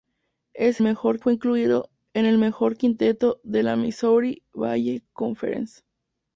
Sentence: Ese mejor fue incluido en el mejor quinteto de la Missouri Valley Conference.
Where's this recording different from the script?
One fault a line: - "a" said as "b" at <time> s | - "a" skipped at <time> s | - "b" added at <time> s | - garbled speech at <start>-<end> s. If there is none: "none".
none